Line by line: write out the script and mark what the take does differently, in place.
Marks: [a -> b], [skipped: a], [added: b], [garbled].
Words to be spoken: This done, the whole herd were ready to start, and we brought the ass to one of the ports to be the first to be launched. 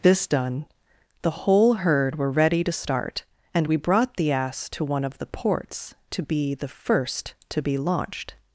This done, the whole herd were ready to start, and we brought the ass to one of the ports to be the first to be launched.